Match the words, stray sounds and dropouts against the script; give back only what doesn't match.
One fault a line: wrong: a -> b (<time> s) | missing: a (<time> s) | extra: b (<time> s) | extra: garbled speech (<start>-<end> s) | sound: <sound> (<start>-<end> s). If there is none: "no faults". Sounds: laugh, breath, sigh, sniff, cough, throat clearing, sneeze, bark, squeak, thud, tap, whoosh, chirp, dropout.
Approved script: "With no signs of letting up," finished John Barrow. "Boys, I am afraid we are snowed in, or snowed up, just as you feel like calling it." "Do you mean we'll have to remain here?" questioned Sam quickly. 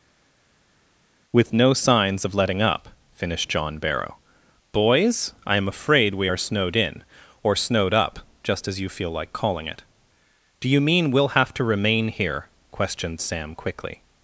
no faults